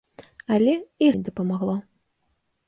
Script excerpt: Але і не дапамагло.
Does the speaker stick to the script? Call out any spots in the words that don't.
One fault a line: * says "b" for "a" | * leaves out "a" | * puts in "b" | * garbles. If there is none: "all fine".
all fine